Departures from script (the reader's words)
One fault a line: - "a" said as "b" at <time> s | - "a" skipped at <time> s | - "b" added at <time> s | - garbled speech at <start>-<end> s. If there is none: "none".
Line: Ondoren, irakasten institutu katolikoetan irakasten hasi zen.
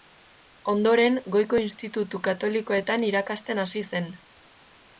- "irakasten" said as "goiko" at 1.4 s